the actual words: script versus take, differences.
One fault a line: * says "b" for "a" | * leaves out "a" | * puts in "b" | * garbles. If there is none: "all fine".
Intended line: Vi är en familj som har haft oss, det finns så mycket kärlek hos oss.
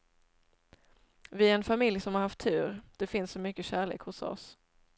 * says "tur" for "oss"